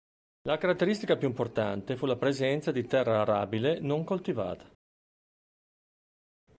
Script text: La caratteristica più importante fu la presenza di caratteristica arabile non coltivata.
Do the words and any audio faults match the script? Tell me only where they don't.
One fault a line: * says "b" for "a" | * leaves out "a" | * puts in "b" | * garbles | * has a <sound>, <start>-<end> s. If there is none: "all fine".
* says "terra" for "caratteristica"